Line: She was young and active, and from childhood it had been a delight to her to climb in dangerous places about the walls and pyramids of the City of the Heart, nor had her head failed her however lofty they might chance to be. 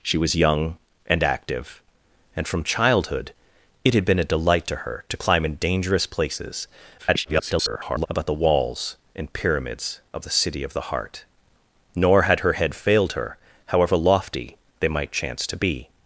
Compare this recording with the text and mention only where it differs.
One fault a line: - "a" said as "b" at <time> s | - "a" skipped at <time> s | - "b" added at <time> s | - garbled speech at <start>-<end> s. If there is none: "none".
- garbled speech at 7.0-8.1 s